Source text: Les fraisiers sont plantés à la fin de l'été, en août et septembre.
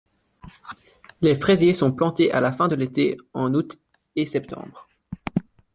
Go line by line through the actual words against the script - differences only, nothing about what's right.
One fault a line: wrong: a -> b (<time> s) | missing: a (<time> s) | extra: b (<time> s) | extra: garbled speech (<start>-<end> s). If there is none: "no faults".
no faults